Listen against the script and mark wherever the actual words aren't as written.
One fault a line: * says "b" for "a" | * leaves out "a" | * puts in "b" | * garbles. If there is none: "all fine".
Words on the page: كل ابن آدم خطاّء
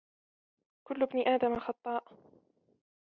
all fine